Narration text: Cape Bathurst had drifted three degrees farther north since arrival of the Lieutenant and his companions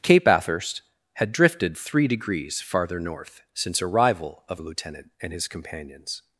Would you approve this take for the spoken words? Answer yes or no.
yes